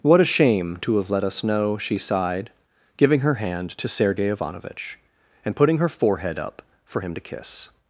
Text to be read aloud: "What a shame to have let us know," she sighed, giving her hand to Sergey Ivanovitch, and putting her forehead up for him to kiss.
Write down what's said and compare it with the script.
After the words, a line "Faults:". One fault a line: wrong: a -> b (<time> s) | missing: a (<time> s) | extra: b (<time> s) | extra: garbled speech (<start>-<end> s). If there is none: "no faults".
"What a shame to have let us know," she sighed, giving her hand to Sergey Ivanovitch, and putting her forehead up for him to kiss.
Faults:
no faults